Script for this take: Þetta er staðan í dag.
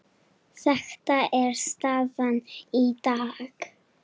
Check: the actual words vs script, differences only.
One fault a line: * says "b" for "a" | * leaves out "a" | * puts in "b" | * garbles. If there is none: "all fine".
all fine